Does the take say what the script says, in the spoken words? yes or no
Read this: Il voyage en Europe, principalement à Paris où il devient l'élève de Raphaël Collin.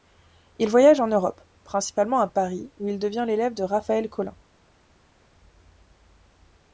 yes